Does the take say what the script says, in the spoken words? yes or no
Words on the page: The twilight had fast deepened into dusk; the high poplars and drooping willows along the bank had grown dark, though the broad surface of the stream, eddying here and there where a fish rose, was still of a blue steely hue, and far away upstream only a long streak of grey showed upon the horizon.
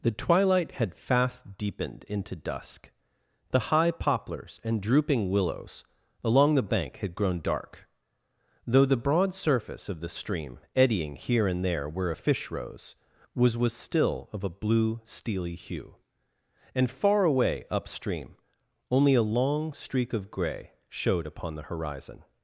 no